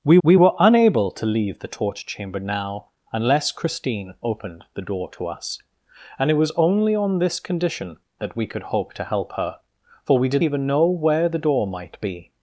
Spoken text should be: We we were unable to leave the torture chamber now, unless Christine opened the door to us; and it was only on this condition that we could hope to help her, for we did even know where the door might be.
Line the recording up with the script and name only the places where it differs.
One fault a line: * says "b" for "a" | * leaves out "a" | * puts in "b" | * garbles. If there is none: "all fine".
all fine